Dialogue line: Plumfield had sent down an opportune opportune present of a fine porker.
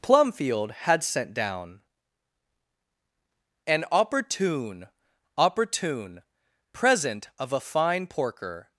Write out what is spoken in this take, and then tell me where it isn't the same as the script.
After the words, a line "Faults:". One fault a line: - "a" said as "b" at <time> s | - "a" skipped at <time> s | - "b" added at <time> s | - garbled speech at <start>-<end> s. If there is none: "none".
Plumfield had sent down an opportune opportune present of a fine porker.
Faults:
none